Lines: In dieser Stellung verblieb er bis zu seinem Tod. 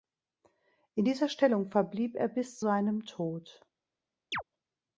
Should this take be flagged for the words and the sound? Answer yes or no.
yes